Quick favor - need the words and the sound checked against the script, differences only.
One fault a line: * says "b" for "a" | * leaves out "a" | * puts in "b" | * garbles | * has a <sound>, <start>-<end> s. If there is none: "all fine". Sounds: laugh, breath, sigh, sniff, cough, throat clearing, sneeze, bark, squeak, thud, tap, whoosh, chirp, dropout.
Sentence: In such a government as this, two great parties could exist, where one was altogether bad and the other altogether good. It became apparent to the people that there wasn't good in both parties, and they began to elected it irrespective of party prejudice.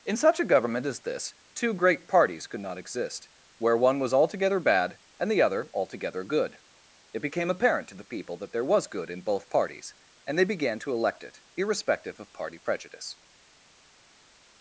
* puts in "not"
* says "was" for "wasn't"
* says "elect" for "elected"